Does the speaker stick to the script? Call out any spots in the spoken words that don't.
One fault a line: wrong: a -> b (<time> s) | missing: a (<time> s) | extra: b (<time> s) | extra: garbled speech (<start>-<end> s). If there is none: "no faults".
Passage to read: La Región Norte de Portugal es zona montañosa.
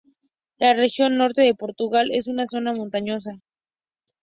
extra: una (2.3 s)